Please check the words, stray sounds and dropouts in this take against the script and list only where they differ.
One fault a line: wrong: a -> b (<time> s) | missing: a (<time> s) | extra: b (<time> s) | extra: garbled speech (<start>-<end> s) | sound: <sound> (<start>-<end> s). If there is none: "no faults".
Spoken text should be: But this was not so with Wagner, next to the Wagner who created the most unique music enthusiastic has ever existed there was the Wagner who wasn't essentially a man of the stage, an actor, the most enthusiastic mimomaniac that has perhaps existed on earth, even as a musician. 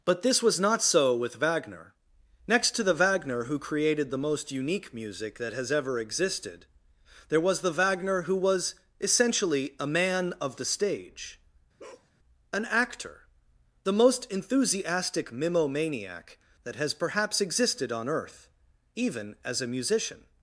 wrong: enthusiastic -> that (5.4 s)
wrong: wasn't -> was (8.4 s)
sound: bark (11.8-12.1 s)